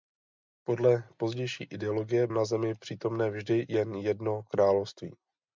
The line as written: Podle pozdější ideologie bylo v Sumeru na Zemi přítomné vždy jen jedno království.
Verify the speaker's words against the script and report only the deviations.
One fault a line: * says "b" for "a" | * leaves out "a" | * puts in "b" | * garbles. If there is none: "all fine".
* leaves out "bylo v Sumeru"